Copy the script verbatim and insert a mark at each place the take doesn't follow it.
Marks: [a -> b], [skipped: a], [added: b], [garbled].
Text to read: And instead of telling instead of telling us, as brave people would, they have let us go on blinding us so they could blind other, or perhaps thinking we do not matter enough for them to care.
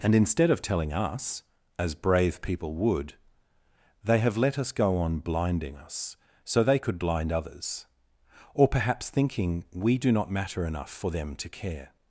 And instead of telling [skipped: instead of telling] us, as brave people would, they have let us go on blinding us so they could blind [other, -> others] or perhaps thinking we do not matter enough for them to care.